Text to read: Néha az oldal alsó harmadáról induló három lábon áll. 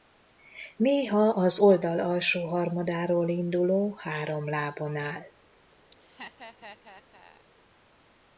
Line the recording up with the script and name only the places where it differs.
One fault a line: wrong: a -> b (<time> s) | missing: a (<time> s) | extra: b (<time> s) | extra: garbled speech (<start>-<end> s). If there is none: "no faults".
no faults